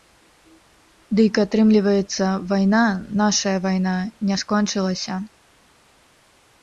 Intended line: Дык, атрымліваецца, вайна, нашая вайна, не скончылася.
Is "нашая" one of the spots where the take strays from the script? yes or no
no